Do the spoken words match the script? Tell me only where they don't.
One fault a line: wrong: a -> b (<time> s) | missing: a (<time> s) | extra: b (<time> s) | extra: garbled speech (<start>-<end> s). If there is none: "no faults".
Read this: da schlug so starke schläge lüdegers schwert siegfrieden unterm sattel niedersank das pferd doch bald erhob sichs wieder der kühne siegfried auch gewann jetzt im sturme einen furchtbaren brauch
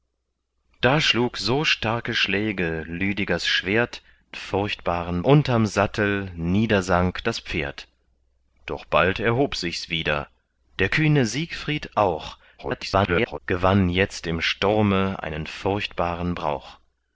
wrong: siegfrieden -> furchtbaren (4.3 s)
extra: garbled speech (12.6-13.4 s)